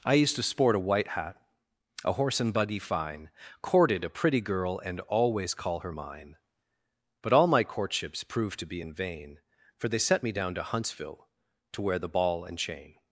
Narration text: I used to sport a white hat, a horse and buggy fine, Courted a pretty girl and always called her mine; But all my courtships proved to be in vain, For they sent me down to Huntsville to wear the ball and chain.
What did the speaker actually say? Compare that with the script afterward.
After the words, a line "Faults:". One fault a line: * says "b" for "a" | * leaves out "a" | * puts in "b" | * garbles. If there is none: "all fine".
I used to sport a white hat, a horse and buggy fine, Courted a pretty girl and always call her mine; But all my courtships proved to be in vain, For they set me down to Huntsville to wear the ball and chain.
Faults:
* says "call" for "called"
* says "set" for "sent"